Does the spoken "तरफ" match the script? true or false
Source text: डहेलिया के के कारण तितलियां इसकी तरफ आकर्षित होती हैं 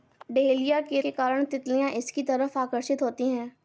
true